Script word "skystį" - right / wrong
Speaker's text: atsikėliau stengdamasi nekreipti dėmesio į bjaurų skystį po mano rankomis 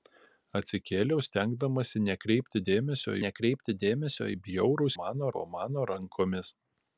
wrong